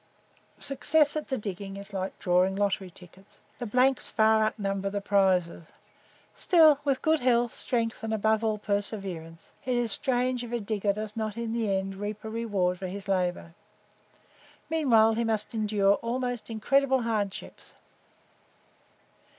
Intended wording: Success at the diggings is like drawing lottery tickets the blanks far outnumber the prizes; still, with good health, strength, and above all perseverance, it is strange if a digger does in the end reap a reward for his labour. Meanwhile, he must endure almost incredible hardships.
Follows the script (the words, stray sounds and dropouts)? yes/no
no